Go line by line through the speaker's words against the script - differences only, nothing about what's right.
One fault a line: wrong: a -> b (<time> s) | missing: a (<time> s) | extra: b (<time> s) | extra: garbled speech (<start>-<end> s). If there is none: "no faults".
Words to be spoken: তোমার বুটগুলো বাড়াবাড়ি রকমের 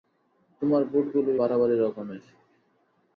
no faults